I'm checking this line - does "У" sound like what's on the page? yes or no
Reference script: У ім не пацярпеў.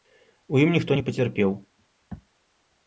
yes